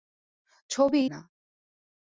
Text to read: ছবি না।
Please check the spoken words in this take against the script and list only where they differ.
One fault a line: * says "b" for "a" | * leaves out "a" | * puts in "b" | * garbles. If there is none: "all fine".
all fine